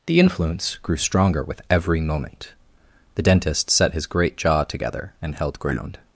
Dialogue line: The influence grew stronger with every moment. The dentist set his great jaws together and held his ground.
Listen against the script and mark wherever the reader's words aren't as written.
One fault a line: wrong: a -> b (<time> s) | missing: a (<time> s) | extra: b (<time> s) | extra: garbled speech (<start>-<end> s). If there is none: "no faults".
wrong: jaws -> jaw (4.4 s)
missing: his (5.6 s)